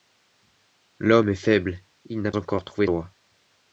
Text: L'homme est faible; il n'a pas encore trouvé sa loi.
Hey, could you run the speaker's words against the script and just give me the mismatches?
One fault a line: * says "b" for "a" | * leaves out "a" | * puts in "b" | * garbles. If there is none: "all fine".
* leaves out "pas"
* leaves out "sa"